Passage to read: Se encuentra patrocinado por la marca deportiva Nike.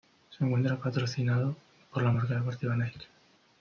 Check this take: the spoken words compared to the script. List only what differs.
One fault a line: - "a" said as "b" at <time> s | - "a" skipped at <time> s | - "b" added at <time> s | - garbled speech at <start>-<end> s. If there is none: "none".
none